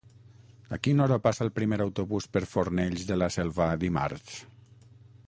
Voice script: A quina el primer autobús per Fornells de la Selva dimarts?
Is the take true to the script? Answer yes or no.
no